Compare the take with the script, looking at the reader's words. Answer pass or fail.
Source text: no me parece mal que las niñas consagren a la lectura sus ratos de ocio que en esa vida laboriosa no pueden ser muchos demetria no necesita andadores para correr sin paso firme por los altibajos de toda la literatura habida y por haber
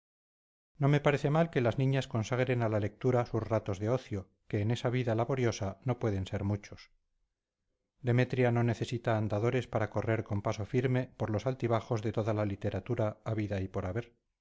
fail